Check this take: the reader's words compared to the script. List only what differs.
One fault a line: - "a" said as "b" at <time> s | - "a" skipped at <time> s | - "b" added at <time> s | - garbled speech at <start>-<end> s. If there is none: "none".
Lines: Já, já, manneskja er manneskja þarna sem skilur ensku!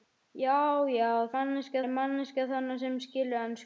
none